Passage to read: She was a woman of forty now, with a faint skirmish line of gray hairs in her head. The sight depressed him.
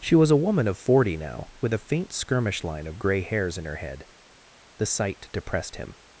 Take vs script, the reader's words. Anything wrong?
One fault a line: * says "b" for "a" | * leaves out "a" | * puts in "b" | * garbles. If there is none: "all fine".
all fine